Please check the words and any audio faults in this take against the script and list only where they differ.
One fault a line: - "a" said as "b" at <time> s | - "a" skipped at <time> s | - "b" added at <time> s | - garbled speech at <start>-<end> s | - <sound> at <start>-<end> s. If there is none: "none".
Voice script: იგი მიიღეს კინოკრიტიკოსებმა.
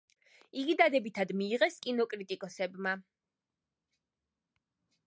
- "დადებითად" added at 0.8 s